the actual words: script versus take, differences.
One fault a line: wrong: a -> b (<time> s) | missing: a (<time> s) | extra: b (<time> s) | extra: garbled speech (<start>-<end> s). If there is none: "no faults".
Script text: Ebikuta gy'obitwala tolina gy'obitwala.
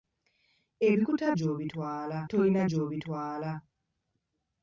no faults